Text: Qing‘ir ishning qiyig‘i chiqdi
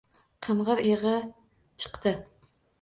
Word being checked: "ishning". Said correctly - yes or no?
no